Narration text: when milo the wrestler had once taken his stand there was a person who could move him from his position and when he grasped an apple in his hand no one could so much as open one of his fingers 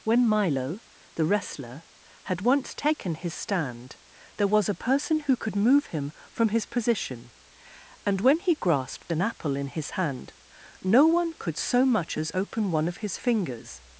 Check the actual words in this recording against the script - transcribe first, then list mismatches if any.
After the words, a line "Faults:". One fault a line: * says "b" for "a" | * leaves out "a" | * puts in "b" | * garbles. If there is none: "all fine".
when milo the wrestler had once taken his stand there was a person who could move him from his position and when he grasped an apple in his hand no one could so much as open one of his fingers
Faults:
all fine